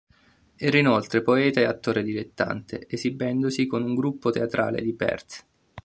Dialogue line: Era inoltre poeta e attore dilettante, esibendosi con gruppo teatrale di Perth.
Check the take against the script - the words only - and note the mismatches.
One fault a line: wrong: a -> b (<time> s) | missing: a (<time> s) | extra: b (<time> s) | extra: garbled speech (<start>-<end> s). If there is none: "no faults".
extra: un (3.8 s)